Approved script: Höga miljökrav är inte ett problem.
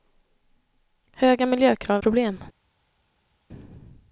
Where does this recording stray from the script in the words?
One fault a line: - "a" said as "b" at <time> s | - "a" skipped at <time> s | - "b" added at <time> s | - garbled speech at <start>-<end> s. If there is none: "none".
- "är inte ett" skipped at 2.0 s